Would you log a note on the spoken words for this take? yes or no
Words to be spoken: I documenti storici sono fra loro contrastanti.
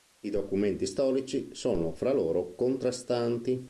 no